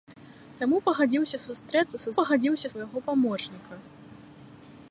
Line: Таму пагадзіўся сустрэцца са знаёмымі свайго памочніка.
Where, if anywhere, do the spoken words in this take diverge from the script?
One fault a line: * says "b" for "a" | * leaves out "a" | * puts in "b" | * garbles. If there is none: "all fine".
* says "пагадзіўся" for "знаёмымі"